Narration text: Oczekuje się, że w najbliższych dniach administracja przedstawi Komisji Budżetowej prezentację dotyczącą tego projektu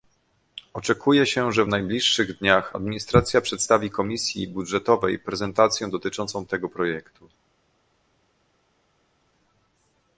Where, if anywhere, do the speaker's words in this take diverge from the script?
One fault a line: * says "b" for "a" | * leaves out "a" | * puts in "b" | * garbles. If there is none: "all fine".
all fine